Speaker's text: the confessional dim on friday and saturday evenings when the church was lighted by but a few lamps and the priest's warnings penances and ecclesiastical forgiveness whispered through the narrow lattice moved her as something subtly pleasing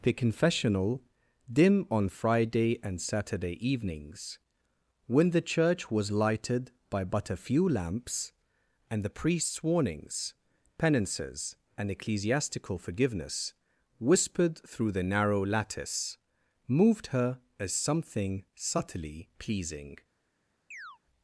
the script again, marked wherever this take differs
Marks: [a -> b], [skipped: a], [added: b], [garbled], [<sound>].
the confessional dim on friday and saturday evenings when the church was lighted by but a few lamps and the priest's warnings penances and ecclesiastical forgiveness whispered through the narrow lattice moved her as something subtly pleasing [chirp]